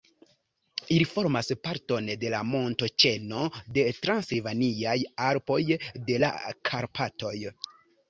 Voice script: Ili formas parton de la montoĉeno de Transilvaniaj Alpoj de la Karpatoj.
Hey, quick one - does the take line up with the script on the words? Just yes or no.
yes